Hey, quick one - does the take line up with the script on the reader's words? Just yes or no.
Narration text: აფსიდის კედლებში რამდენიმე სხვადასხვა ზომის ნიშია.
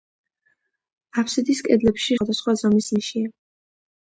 no